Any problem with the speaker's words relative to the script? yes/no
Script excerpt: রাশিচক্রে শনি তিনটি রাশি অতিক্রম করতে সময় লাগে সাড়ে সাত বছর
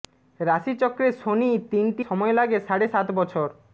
yes